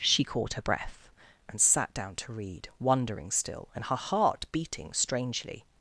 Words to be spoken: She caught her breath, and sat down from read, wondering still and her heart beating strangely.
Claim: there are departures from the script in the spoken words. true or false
true